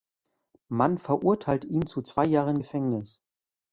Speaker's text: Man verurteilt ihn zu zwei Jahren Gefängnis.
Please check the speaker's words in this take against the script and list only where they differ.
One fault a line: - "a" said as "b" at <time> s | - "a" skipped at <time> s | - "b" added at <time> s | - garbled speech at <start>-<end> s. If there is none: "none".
none